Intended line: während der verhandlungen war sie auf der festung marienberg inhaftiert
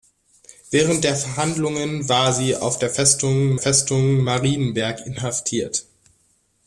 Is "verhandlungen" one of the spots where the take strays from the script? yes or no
no